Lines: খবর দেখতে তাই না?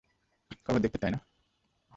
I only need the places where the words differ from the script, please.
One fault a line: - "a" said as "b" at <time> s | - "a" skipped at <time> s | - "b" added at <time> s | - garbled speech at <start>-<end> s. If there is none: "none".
none